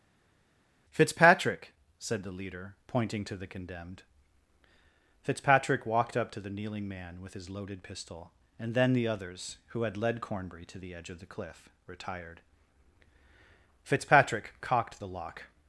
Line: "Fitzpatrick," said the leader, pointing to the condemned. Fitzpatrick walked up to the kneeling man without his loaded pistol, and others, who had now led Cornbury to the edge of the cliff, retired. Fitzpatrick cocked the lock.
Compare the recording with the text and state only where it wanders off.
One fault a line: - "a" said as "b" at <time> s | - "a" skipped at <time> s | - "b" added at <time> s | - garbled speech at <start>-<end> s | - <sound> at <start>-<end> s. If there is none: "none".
- "without" said as "with" at 7.2 s
- "then the" added at 8.7 s
- "now" skipped at 10.0 s